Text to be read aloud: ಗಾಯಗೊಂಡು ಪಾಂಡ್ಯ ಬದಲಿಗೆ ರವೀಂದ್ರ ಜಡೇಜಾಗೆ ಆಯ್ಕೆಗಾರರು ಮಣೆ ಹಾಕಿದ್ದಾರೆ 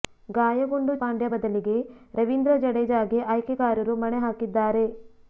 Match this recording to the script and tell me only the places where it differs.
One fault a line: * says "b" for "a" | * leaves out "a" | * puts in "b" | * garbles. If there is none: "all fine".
all fine